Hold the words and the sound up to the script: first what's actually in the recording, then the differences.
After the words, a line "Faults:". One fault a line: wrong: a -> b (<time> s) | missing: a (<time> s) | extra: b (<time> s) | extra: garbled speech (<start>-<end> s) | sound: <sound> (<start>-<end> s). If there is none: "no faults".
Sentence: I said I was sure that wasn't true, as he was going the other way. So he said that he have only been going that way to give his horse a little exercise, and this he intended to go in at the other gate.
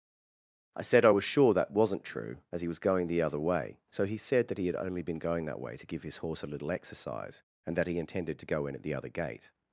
I said I was sure that wasn't true, as he was going the other way. So he said that he had only been going that way to give his horse a little exercise, and that he intended to go in at the other gate.
Faults:
wrong: have -> had (4.7 s)
wrong: this -> that (7.7 s)